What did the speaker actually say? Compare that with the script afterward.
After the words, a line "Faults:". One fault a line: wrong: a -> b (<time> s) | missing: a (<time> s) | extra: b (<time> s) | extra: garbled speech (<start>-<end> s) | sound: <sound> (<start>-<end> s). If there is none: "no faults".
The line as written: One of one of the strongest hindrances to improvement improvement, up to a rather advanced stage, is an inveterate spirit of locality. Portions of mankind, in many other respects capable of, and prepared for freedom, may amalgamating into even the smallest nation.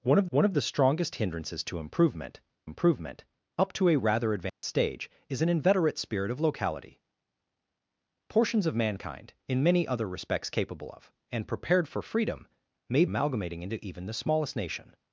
One of one of the strongest hindrances to improvement improvement, up to a rather advanced stage, is an inveterate spirit of locality. Portions of mankind, in many other respects capable of, and prepared for freedom, may amalgamating into even the smallest nation.
Faults:
sound: dropout (4.5-4.6 s)